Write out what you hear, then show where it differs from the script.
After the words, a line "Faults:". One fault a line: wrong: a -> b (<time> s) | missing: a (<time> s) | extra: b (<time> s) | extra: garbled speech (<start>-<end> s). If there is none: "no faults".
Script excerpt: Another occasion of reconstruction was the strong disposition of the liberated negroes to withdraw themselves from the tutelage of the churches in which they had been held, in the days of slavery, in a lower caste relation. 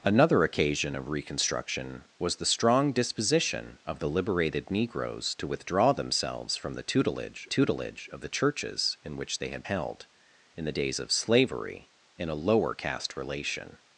Another occasion of reconstruction was the strong disposition of the liberated negroes to withdraw themselves from the tutelage tutelage of the churches in which they had held, in the days of slavery, in a lower caste relation.
Faults:
extra: tutelage (7.5 s)
missing: been (9.6 s)